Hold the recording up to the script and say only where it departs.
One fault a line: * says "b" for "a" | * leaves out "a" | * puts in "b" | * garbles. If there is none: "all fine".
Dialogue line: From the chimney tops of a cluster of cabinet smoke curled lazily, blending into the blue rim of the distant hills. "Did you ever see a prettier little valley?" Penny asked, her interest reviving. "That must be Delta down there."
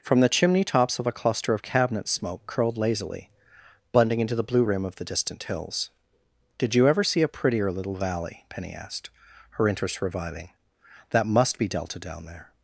all fine